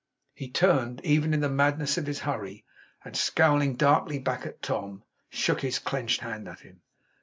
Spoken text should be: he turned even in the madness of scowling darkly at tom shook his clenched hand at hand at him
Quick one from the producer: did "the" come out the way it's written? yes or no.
yes